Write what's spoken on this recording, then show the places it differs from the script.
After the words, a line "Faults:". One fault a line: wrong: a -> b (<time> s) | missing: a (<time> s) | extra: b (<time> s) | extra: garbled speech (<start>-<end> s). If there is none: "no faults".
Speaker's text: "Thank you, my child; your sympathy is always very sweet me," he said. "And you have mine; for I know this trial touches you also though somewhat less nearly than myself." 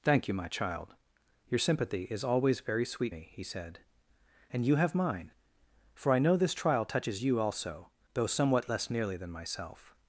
"Thank you, my child; your sympathy is always very sweet me," he said. "And you have mine; for I know this trial touches you also though somewhat less nearly than myself."
Faults:
no faults